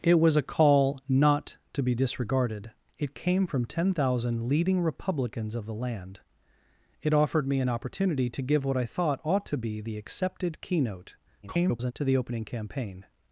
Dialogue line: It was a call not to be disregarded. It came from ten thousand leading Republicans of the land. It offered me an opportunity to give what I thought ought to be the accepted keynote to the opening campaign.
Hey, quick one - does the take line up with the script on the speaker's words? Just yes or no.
no